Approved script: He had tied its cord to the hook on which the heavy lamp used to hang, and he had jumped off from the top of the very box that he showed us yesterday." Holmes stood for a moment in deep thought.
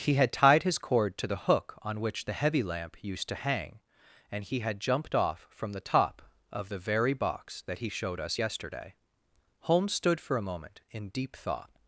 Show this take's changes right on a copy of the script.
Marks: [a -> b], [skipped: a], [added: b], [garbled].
He had tied [its -> his] cord to the hook on which the heavy lamp used to hang, and he had jumped off from the top of the very box that he showed us yesterday." Holmes stood for a moment in deep thought.